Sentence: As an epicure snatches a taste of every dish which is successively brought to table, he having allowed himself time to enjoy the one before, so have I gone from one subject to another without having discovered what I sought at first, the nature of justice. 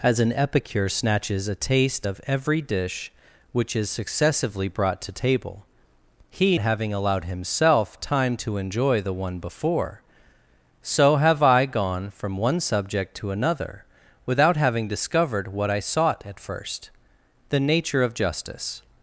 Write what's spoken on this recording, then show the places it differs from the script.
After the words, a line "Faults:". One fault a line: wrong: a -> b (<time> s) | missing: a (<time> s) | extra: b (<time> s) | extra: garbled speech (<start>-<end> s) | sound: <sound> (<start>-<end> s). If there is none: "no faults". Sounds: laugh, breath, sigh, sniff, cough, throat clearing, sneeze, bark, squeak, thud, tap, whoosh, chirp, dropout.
As an epicure snatches a taste of every dish which is successively brought to table, he having allowed himself time to enjoy the one before, so have I gone from one subject to another without having discovered what I sought at first, the nature of justice.
Faults:
no faults